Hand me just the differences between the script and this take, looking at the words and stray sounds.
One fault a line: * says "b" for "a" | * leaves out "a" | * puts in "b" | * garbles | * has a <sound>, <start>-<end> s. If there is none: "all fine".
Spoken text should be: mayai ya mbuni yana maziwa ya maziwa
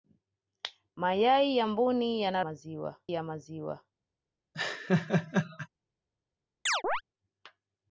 * has a laugh, 4.5-5.7 s
* has a chirp, 6.7-7.0 s